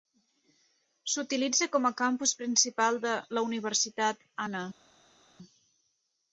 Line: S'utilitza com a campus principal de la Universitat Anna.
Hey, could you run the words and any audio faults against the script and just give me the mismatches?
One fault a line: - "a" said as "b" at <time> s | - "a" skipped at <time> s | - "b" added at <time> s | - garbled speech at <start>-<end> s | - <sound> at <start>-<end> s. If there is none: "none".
none